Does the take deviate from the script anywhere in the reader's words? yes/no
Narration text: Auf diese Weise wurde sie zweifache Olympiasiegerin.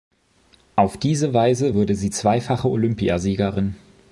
no